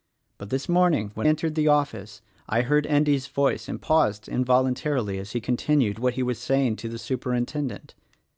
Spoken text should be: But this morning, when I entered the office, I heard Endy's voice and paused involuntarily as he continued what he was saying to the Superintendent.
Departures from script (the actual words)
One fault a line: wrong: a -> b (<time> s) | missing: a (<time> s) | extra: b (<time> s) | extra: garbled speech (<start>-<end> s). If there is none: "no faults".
missing: I (1.3 s)